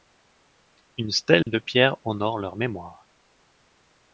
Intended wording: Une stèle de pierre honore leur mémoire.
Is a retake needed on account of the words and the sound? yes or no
yes